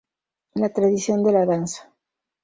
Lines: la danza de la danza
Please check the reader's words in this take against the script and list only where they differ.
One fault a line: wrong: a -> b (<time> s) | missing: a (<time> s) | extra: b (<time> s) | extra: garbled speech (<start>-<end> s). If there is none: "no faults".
wrong: danza -> tradición (0.7 s)